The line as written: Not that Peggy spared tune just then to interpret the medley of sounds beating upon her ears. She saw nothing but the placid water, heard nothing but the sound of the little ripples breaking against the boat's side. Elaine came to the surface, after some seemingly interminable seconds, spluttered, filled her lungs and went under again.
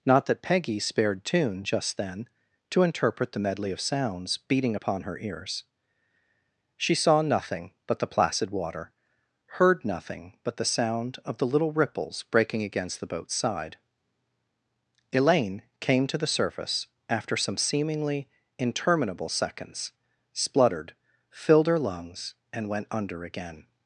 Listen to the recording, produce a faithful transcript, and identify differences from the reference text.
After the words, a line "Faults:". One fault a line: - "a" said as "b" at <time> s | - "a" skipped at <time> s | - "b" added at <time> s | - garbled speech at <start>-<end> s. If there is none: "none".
Not that Peggy spared tune just then to interpret the medley of sounds beating upon her ears. She saw nothing but the placid water, heard nothing but the sound of the little ripples breaking against the boat's side. Elaine came to the surface, after some seemingly interminable seconds, spluttered, filled her lungs and went under again.
Faults:
none